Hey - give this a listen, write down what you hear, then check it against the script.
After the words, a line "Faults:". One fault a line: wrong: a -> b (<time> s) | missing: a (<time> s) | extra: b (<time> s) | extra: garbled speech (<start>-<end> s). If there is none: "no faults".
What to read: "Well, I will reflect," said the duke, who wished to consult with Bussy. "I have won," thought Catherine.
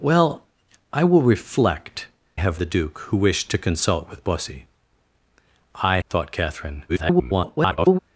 "Well, I will reflect," have the duke, who wished to consult with Bussy. "I," thought Catherine. [garbled]
Faults:
wrong: said -> have (2.3 s)
missing: have won (6.0 s)
extra: garbled speech (6.9-8.0 s)